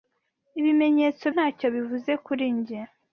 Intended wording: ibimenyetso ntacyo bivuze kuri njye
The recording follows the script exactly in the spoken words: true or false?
true